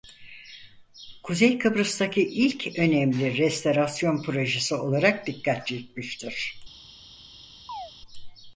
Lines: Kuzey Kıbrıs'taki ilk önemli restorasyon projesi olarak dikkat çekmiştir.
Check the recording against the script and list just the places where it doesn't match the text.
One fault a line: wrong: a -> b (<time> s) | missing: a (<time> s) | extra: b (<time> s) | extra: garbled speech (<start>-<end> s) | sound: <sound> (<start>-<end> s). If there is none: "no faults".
sound: chirp (7.7-7.9 s)